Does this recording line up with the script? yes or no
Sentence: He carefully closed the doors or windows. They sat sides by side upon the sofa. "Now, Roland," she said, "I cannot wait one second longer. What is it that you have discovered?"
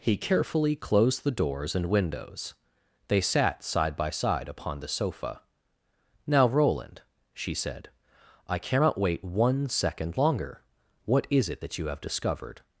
no